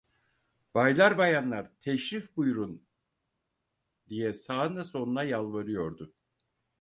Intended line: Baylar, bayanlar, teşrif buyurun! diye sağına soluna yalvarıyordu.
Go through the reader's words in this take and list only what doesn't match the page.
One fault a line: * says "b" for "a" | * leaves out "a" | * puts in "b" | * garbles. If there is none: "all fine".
all fine